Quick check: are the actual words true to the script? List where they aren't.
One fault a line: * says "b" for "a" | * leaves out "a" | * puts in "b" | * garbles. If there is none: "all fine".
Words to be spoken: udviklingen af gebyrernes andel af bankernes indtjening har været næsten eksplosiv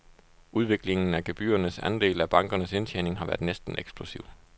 all fine